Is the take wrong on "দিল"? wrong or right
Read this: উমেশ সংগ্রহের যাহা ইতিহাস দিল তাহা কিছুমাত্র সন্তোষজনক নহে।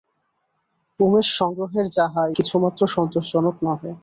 wrong